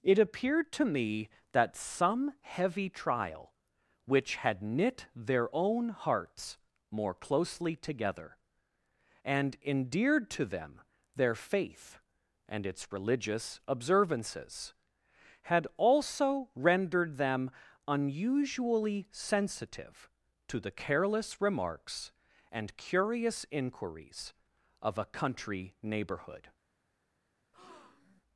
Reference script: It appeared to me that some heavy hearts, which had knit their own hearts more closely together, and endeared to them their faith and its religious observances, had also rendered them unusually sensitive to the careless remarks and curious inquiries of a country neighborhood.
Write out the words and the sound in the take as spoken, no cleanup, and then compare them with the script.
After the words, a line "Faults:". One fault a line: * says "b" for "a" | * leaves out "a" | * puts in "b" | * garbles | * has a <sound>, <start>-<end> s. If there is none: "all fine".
It appeared to me that some heavy trial, which had knit their own hearts more closely together, and endeared to them their faith and its religious observances, had also rendered them unusually sensitive to the careless remarks and curious inquiries of a country neighborhood.
Faults:
* says "trial" for "hearts"
* has a breath, 27.5-28.2 s